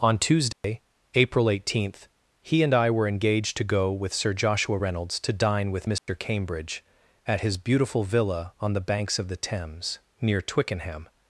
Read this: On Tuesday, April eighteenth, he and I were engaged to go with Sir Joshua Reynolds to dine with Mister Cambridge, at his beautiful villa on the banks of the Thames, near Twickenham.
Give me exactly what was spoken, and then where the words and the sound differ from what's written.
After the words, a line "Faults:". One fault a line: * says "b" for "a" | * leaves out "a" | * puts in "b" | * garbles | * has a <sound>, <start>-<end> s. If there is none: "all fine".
On Tuesday, April eighteenth, he and I were engaged to go with Sir Joshua Reynolds to dine with Mister Cambridge, at his beautiful villa on the banks of the Thames, near Twickenham.
Faults:
* has a dropout, 0.5-0.6 s
* has a dropout, 6.0-6.1 s